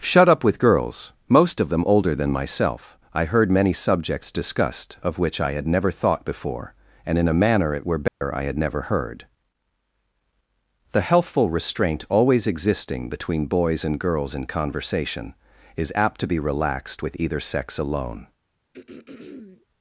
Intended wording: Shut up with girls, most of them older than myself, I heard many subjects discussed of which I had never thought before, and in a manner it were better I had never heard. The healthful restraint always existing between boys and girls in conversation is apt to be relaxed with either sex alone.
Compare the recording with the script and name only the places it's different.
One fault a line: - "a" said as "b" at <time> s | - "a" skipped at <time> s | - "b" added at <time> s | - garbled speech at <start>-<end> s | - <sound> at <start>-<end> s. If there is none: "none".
- dropout at 8.1-8.2 s
- throat clearing at 18.7-19.7 s